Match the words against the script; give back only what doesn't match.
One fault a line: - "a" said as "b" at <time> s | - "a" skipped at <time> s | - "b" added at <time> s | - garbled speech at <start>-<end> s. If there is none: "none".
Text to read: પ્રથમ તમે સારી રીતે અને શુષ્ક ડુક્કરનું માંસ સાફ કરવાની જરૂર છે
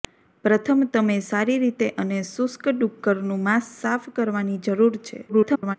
- garbled speech at 5.3-5.8 s